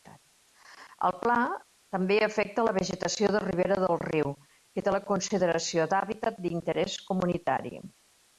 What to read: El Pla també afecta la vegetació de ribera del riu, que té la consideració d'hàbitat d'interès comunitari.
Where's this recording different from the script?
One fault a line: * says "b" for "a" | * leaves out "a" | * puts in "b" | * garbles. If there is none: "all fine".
all fine